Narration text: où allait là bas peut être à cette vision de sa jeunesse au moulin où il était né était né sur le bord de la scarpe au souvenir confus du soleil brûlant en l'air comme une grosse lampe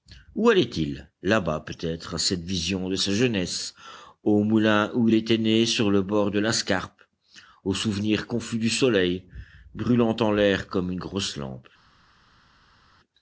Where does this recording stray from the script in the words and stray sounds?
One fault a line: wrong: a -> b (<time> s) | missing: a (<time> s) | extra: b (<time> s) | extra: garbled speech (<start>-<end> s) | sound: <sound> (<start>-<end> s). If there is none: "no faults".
extra: il (0.6 s)
missing: était né (5.7 s)